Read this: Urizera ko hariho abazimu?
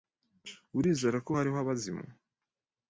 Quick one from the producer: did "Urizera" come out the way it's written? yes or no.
yes